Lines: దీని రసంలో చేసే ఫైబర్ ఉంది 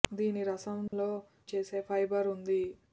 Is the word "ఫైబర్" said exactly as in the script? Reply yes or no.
yes